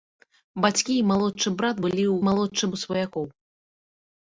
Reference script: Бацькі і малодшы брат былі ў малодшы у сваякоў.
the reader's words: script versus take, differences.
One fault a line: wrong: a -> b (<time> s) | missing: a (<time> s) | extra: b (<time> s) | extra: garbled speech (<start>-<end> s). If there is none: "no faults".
no faults